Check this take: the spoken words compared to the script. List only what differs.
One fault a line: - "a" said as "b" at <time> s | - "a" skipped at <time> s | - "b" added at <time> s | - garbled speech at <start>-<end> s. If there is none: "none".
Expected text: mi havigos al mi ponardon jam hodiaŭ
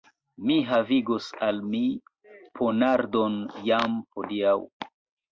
none